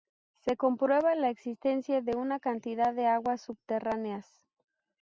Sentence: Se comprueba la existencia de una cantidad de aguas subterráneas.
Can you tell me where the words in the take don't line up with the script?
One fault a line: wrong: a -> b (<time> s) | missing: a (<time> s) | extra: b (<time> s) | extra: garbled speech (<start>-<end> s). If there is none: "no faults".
no faults